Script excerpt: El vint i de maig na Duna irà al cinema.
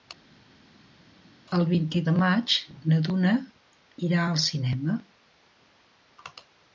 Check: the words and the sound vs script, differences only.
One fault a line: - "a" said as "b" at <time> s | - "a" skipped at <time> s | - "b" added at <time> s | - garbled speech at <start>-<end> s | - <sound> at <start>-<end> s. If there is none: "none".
none